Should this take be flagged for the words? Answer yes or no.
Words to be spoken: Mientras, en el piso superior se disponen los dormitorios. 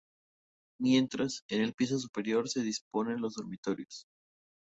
no